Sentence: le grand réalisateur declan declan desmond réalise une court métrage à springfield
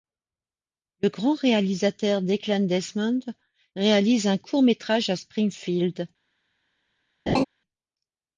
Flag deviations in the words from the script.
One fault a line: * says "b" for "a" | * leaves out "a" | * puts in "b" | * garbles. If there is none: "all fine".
* leaves out "declan"
* says "un" for "une"